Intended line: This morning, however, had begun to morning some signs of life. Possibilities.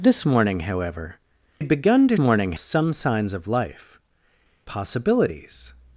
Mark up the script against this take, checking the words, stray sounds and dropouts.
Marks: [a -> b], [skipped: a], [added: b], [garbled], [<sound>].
This morning, however, had begun to morning some signs of life. Possibilities.